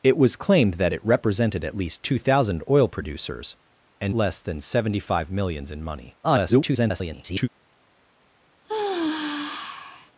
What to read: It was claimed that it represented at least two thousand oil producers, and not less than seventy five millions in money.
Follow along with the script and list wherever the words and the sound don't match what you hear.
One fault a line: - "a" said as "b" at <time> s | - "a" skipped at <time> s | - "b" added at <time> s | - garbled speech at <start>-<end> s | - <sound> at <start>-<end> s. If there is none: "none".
- "not" skipped at 4.2 s
- garbled speech at 6.2-7.5 s
- sigh at 8.6-10.1 s